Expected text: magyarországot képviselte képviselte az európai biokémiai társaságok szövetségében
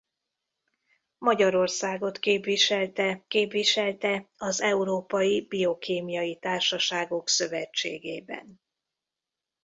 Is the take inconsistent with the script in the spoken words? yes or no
no